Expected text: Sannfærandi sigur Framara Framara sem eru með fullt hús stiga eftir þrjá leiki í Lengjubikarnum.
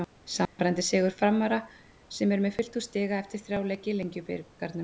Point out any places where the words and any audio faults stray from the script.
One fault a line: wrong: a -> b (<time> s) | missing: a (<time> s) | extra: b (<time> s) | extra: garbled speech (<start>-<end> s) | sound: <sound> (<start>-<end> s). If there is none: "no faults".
sound: dropout (0.5-0.6 s)
missing: Framara (1.6 s)